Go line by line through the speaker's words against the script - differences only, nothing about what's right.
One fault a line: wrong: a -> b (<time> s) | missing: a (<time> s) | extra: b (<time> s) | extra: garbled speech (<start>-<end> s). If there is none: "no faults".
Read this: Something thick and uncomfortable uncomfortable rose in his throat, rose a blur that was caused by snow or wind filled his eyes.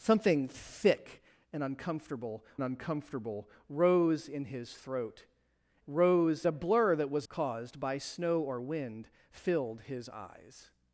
no faults